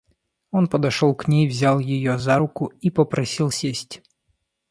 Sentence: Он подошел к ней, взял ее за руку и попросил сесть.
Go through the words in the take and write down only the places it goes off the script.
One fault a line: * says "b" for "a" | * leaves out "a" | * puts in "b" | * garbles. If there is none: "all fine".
all fine